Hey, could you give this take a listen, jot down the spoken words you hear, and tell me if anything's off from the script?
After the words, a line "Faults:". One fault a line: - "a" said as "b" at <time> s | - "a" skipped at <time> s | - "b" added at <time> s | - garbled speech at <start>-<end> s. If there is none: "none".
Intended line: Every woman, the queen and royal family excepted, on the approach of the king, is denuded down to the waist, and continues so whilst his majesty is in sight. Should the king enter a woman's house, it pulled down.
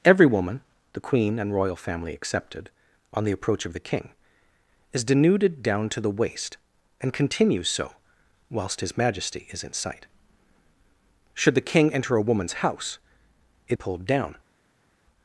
Every woman, the queen and royal family excepted, on the approach of the king, is denuded down to the waist, and continues so whilst his majesty is in sight. Should the king enter a woman's house, it pulled down.
Faults:
none